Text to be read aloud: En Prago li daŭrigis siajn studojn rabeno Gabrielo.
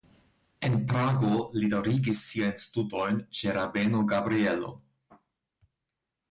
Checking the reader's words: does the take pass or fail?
fail